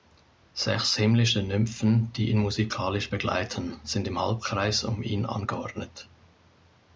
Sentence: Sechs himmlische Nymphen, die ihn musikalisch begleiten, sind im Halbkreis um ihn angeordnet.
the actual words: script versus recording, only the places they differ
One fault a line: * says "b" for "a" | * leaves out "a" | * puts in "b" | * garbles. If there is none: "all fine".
all fine